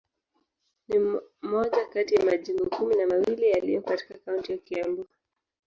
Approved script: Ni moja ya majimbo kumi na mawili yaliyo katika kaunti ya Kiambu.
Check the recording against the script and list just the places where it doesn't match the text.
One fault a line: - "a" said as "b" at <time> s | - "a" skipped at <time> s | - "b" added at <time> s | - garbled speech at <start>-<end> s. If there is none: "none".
- "kati" added at 1.9 s